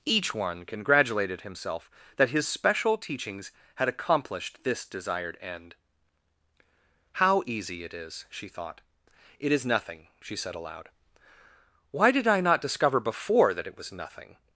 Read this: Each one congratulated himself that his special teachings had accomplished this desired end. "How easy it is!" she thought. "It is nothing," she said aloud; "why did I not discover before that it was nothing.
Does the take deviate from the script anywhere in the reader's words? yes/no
no